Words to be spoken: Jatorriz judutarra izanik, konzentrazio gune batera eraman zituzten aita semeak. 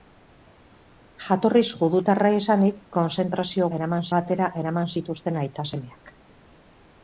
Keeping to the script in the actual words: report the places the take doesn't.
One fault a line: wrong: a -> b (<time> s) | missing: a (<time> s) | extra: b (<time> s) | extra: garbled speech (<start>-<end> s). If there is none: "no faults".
wrong: gune -> eraman (3.8 s)